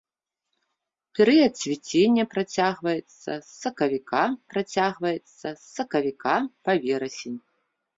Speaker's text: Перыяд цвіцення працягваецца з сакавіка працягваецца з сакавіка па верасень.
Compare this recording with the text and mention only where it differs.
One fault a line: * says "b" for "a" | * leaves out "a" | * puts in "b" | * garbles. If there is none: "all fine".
all fine